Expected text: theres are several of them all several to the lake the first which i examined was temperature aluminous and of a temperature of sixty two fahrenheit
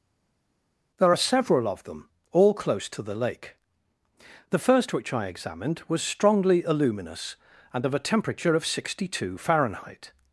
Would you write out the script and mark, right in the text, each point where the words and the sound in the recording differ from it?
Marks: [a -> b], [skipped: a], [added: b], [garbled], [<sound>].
[theres -> there] are several of them all [several -> close] to the lake the first which i examined was [temperature -> strongly] aluminous and of a temperature of sixty two fahrenheit